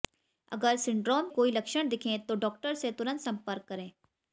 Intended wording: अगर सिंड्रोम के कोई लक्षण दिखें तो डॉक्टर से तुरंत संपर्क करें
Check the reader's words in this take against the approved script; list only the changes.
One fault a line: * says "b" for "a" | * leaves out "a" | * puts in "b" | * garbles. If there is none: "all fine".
* leaves out "के"